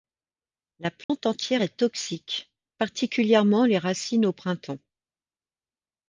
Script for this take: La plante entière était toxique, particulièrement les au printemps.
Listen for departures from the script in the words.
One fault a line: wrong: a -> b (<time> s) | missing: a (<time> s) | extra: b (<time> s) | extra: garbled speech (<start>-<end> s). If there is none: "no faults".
wrong: était -> est (1.6 s)
extra: racines (3.8 s)